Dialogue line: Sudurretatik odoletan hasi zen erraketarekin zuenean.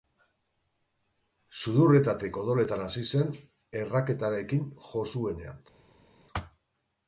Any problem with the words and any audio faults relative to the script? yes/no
yes